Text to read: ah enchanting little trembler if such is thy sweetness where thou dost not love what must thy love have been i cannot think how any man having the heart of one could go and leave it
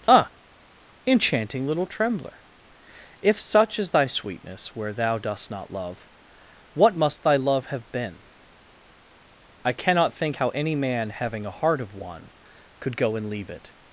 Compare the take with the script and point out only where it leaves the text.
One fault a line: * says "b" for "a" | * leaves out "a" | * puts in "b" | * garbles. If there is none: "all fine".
* says "a" for "the"